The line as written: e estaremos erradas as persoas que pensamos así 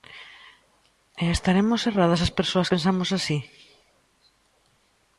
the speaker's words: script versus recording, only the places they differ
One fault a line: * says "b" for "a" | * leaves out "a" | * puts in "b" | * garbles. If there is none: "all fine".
* leaves out "que"